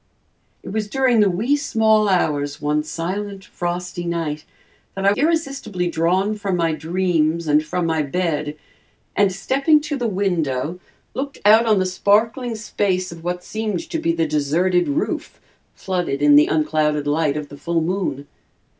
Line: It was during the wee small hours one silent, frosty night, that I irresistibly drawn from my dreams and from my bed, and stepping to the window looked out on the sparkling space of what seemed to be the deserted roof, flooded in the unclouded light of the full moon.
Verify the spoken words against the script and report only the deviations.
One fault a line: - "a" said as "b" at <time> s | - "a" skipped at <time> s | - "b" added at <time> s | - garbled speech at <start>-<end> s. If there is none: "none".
none